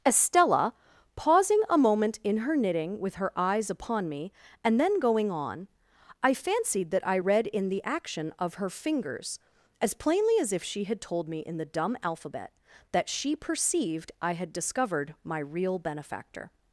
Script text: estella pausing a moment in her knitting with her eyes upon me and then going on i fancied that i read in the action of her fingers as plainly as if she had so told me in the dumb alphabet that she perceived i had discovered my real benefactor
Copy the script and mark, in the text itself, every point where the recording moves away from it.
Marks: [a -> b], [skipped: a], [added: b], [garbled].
estella pausing a moment in her knitting with her eyes upon me and then going on i fancied that i read in the action of her fingers as plainly as if she had [skipped: so] told me in the dumb alphabet that she perceived i had discovered my real benefactor